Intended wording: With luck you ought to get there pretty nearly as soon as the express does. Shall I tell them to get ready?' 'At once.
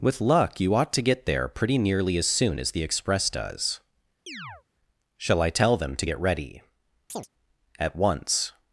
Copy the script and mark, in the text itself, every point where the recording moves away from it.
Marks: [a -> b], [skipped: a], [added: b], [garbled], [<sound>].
With luck you ought to get there pretty nearly as soon as the express does. [chirp] Shall I tell them to get ready?' [chirp] 'At once.